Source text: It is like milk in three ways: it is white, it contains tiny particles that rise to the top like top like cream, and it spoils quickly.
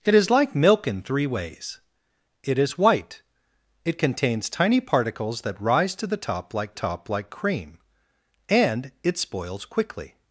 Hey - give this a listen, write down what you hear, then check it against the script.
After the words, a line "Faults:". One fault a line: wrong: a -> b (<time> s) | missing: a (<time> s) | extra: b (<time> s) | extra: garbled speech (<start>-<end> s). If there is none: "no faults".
It is like milk in three ways: it is white, it contains tiny particles that rise to the top like top like cream, and it spoils quickly.
Faults:
no faults